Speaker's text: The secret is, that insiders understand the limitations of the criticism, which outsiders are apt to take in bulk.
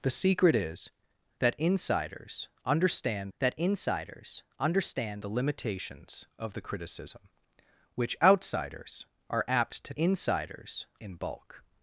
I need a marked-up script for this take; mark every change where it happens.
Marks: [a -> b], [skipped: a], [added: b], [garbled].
The secret is, that insiders understand [added: that insiders understand] the limitations of the criticism, which outsiders are apt to [take -> insiders] in bulk.